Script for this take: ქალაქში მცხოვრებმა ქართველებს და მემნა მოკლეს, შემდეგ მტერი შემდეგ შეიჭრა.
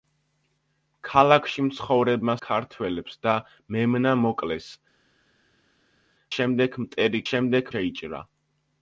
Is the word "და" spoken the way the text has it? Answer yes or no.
yes